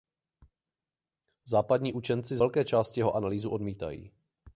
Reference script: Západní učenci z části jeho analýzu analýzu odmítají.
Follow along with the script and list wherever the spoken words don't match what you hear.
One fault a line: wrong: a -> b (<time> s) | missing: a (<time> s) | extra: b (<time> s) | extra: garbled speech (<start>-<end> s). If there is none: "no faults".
extra: velké (2.3 s)
missing: analýzu (3.5 s)